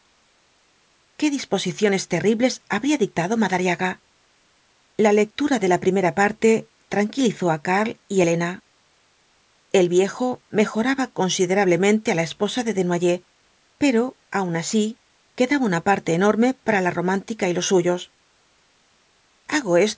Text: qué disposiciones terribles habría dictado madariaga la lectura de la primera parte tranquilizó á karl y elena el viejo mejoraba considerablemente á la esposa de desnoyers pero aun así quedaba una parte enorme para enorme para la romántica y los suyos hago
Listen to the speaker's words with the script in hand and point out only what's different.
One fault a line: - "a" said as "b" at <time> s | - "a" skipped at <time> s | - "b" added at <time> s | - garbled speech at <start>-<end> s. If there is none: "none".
- "enorme para" skipped at 16.8 s